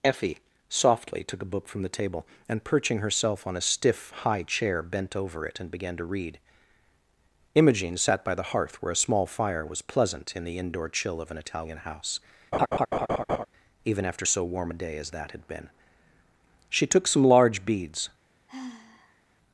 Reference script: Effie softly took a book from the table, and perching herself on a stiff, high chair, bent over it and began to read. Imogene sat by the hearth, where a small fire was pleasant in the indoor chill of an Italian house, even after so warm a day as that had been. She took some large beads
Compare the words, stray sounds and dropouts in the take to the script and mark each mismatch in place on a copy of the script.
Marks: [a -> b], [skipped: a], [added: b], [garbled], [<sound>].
Effie softly took a book from the table, and perching herself on a stiff, high chair, bent over it and began to read. Imogene sat by the hearth, where a small fire was pleasant in the indoor chill of an Italian house, [laugh] even after so warm a day as that had been. She took some large beads [sigh]